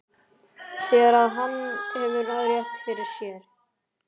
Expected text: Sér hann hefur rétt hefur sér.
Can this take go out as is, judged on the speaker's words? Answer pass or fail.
fail